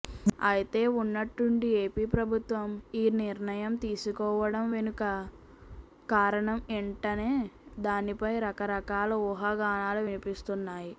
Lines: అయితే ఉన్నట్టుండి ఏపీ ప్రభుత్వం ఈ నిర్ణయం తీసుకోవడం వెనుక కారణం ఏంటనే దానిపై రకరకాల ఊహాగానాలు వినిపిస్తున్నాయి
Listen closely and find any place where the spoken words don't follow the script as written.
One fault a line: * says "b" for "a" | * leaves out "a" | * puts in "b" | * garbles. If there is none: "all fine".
all fine